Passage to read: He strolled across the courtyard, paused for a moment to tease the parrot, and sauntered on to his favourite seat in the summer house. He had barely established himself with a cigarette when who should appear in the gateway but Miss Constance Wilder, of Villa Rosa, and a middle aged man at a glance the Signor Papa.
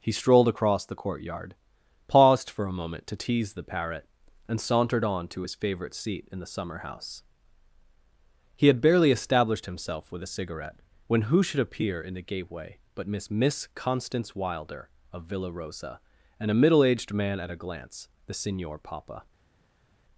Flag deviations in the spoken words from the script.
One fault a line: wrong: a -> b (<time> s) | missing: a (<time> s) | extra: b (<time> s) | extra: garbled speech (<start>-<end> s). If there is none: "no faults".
extra: Miss (13.3 s)